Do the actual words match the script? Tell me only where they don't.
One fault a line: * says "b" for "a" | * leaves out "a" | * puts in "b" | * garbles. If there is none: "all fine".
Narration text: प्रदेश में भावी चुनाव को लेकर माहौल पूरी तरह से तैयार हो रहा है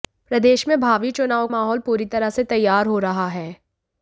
* leaves out "को लेकर"